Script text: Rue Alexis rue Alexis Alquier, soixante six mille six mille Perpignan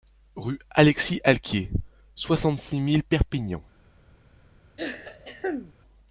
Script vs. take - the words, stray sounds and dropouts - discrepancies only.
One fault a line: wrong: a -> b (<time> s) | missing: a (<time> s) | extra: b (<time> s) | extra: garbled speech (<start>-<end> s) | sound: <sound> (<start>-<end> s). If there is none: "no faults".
missing: rue Alexis (1.2 s)
missing: six mille (3.0 s)
sound: throat clearing (4.8-5.7 s)